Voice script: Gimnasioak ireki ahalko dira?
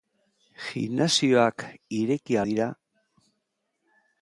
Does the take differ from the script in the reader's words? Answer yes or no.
yes